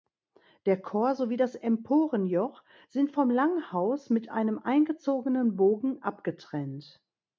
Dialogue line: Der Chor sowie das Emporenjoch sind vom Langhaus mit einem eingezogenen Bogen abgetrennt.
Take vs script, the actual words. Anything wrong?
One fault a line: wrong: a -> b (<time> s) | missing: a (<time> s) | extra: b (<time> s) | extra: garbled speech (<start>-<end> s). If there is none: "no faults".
no faults